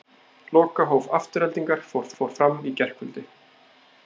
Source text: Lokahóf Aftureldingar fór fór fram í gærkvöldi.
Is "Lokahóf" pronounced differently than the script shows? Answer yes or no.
no